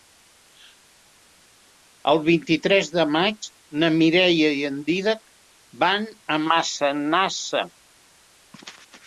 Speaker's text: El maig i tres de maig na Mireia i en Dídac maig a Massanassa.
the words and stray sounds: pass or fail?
fail